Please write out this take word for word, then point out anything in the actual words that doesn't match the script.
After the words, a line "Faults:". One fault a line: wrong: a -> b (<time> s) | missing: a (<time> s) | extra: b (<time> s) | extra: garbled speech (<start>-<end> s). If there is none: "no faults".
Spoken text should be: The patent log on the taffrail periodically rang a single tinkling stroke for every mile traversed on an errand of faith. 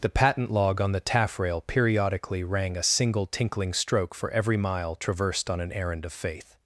The patent log on the taffrail periodically rang a single tinkling stroke for every mile traversed on an errand of faith.
Faults:
no faults